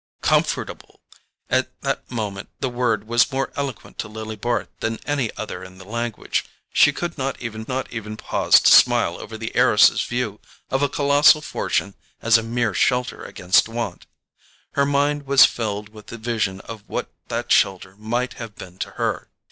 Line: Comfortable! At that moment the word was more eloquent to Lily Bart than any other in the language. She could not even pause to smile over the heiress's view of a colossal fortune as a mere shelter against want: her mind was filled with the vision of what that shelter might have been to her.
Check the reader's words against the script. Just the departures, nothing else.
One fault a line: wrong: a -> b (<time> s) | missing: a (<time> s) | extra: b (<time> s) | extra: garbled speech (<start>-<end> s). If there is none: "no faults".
extra: not even (7.7 s)